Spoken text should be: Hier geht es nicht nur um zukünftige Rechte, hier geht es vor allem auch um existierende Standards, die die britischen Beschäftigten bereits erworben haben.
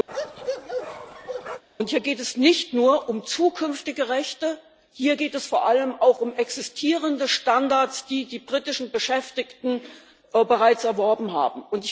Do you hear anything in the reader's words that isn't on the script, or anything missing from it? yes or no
no